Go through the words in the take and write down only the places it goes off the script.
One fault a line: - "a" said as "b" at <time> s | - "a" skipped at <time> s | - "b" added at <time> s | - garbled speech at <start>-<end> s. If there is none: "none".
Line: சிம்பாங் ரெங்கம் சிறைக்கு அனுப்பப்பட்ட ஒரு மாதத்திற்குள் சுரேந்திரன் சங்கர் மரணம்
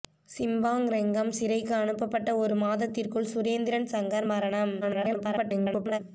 - garbled speech at 4.8-6.0 s